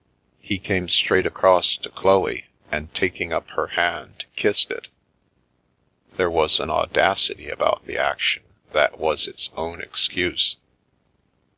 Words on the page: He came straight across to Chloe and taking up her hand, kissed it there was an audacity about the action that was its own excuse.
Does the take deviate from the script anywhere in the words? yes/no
no